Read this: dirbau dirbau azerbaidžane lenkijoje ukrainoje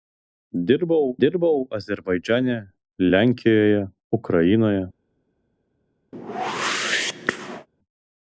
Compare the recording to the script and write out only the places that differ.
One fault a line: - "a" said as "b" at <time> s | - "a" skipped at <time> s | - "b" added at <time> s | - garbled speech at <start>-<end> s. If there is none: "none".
none